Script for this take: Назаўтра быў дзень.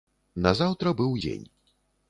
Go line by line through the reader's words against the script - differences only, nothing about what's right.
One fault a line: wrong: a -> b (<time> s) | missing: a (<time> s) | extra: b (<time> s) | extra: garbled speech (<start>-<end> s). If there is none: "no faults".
no faults